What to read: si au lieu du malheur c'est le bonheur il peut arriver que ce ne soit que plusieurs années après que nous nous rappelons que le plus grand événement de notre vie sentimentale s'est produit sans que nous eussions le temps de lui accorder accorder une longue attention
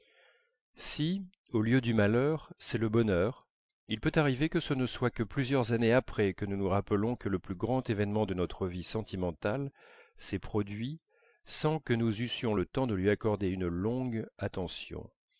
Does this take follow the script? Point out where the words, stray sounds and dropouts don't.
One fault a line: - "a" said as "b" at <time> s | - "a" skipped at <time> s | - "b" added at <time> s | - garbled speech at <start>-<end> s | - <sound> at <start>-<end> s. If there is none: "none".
- "accorder" skipped at 13.5 s